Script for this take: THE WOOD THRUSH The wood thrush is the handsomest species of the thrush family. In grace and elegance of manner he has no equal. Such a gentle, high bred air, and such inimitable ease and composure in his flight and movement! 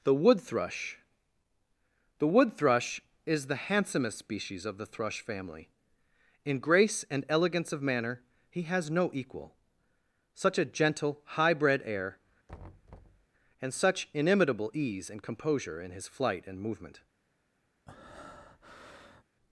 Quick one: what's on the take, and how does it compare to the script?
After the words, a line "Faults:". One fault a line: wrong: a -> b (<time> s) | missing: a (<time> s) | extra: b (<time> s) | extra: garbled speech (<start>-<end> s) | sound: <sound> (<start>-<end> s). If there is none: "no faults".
THE WOOD THRUSH The wood thrush is the handsomest species of the thrush family. In grace and elegance of manner he has no equal. Such a gentle, high bred air, and such inimitable ease and composure in his flight and movement!
Faults:
sound: thud (12.5-13.3 s)
sound: breath (17.9-19.2 s)